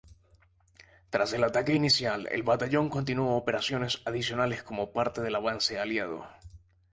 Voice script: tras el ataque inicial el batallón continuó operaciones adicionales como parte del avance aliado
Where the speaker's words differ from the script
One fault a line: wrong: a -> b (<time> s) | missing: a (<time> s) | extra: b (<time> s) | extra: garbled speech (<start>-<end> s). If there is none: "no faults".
no faults